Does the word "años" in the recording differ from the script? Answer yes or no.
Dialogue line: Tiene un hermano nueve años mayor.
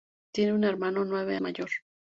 yes